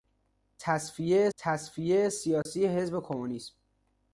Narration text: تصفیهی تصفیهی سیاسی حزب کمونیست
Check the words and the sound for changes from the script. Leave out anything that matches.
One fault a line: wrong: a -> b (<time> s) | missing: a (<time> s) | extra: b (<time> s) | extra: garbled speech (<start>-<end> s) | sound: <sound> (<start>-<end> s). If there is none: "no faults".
sound: dropout (2.4-2.5 s)